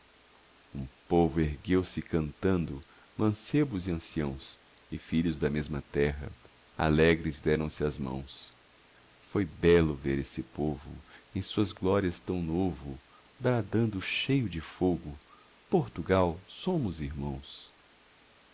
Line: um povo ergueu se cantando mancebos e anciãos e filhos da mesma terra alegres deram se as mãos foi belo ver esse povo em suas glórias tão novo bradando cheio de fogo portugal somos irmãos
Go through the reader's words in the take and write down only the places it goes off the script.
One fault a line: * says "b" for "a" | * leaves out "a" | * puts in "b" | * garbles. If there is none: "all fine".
all fine